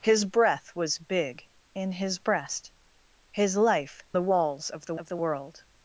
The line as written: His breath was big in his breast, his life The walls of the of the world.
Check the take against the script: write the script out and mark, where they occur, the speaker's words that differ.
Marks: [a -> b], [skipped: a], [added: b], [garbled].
His breath was big in his breast, his life The walls of the of the world.